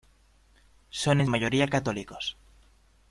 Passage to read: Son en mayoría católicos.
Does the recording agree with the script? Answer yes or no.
yes